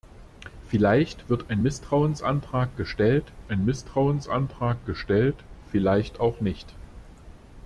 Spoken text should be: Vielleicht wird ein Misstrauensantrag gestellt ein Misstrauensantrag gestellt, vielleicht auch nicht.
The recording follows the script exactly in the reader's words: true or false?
true